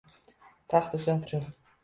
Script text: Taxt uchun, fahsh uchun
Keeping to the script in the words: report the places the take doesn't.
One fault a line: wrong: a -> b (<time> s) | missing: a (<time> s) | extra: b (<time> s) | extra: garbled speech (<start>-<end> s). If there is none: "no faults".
missing: fahsh (1.2 s)